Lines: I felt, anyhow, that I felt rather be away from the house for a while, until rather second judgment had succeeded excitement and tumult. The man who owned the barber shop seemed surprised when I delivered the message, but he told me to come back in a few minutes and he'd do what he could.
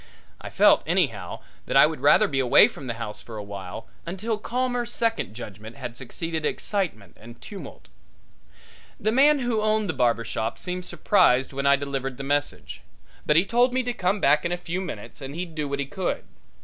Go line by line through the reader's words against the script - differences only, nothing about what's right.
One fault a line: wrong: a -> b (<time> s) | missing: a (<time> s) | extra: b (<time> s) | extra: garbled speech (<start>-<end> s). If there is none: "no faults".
wrong: felt -> would (1.9 s)
wrong: rather -> calmer (4.4 s)